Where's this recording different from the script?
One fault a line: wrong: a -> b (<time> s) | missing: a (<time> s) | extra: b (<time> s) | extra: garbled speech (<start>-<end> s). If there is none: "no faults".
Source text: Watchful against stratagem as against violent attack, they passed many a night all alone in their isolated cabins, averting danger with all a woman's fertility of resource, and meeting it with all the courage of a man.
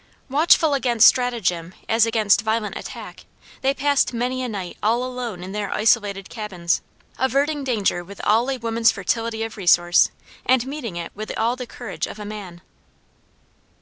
no faults